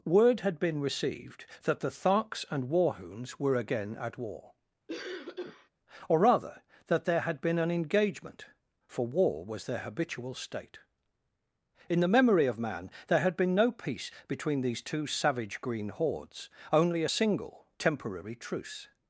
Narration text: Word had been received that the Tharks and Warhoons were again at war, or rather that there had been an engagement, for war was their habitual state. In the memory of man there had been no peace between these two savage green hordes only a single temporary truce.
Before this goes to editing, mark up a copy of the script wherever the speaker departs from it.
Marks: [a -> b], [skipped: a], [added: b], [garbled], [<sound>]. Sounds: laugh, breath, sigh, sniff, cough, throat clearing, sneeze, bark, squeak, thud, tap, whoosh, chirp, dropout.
Word had been received that the Tharks and Warhoons were again at war, [cough] or rather that there had been an engagement, for war was their habitual state. In the memory of man there had been no peace between these two savage green hordes only a single temporary truce.